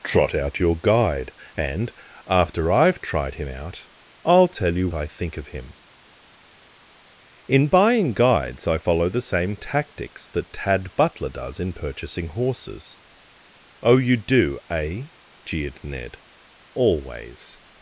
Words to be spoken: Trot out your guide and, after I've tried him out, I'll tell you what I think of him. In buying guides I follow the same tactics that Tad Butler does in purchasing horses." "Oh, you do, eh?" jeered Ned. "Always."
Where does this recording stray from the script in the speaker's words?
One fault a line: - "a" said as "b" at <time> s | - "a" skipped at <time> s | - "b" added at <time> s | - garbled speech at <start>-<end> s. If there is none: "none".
- "what" skipped at 4.9 s